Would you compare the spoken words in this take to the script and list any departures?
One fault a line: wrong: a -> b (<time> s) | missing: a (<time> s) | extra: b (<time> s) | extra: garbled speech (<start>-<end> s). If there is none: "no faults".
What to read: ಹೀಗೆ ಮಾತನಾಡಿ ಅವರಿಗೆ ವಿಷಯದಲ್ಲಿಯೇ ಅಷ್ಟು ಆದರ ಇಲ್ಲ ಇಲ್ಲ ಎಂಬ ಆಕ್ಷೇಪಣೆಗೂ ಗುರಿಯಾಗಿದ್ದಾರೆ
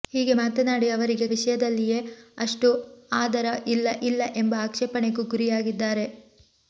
no faults